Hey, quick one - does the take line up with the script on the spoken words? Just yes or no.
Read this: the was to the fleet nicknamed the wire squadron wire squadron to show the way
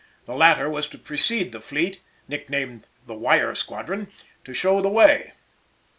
no